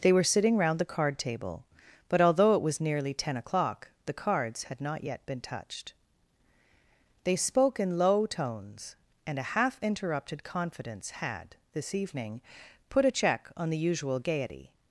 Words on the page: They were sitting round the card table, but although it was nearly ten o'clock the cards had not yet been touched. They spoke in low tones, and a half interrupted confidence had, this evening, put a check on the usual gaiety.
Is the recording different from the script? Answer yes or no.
no